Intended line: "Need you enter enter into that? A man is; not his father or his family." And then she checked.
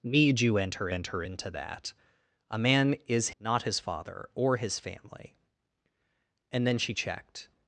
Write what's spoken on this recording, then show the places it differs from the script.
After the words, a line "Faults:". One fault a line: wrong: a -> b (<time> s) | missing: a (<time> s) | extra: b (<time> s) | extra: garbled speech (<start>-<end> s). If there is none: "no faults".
"Need you enter enter into that? A man is; not his father or his family." And then she checked.
Faults:
no faults